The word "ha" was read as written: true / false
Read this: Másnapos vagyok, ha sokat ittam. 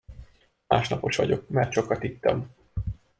false